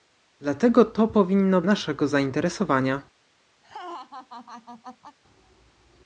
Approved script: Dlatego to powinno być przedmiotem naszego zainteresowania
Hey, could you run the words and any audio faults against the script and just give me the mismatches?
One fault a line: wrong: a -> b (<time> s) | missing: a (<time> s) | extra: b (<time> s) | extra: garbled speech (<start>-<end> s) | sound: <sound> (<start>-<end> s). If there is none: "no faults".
missing: być przedmiotem (1.6 s)
sound: laugh (3.6-5.2 s)